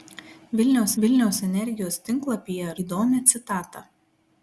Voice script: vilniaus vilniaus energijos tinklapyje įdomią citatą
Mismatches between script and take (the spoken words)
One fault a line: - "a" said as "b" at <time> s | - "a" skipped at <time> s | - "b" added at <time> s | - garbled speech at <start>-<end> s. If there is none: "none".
none